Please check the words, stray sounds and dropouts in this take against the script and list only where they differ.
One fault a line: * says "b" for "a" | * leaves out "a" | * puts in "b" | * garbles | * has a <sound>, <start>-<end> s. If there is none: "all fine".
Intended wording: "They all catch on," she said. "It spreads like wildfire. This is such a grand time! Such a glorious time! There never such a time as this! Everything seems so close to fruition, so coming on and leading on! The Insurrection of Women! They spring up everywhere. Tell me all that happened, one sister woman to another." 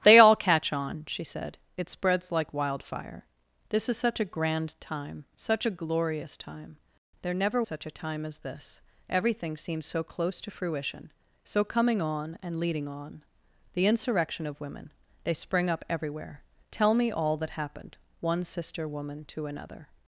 all fine